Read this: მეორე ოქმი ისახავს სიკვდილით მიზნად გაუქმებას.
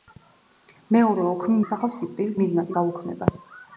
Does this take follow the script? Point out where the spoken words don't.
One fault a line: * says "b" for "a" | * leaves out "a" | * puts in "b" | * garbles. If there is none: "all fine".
all fine